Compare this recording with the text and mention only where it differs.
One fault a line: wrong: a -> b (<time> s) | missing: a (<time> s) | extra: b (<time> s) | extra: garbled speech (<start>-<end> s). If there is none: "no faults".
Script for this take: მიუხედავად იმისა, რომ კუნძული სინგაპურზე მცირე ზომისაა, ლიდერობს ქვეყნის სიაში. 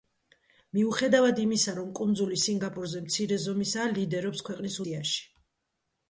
no faults